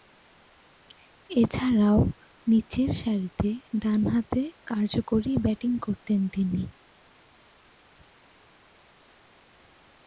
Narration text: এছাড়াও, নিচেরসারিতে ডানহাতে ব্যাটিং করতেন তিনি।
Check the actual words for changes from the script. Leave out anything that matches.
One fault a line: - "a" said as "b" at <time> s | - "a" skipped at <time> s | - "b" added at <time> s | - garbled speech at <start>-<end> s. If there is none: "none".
- "কার্যকরী" added at 4.7 s